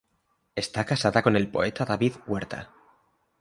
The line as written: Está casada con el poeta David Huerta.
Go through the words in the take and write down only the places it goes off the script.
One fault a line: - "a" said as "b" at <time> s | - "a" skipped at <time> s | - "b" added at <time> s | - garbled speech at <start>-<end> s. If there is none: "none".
none